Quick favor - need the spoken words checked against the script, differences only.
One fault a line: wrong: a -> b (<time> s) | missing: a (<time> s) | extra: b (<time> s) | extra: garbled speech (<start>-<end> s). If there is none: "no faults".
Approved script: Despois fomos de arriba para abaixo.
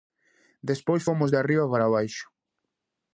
no faults